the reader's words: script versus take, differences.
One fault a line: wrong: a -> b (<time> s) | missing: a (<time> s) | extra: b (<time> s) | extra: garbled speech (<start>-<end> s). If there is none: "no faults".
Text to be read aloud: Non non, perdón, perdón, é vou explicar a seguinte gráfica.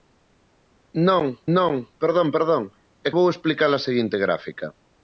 no faults